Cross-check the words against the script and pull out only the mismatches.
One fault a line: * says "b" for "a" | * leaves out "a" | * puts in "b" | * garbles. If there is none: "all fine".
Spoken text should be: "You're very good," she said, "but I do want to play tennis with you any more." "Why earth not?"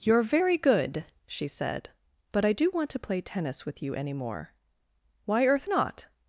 all fine